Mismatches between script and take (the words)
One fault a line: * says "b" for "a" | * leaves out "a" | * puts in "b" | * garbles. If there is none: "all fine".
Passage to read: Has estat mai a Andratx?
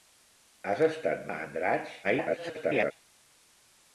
* leaves out "mai"
* garbles